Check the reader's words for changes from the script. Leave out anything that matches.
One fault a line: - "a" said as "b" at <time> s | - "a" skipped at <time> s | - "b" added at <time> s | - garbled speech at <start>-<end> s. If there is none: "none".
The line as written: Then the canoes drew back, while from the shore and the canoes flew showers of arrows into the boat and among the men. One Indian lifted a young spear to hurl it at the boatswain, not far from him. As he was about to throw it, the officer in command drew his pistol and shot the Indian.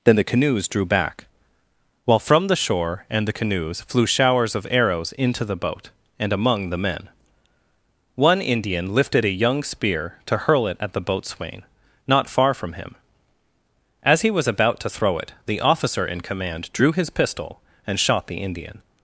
none